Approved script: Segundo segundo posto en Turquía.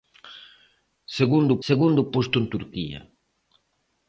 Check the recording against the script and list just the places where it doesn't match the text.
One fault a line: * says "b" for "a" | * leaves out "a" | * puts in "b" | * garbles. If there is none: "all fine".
all fine